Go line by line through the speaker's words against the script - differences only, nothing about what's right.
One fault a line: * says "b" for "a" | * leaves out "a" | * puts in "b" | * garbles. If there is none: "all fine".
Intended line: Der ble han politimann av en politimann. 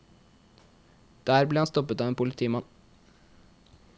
* says "stoppet" for "politimann"